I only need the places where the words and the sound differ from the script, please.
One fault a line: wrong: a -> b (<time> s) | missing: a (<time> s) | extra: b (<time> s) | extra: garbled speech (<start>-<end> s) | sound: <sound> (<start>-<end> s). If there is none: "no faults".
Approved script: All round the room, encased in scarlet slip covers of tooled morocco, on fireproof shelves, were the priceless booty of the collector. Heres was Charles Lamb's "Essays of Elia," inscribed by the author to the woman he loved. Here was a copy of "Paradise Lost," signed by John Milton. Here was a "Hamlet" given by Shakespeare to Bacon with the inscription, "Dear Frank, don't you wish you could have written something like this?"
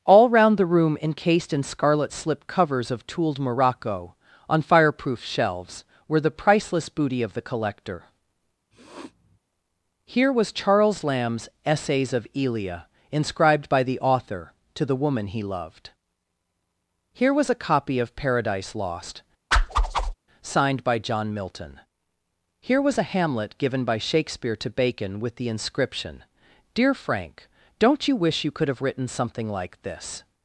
sound: sniff (8.7-9.4 s)
wrong: Heres -> Here (10.0 s)
sound: whoosh (19.5-20.1 s)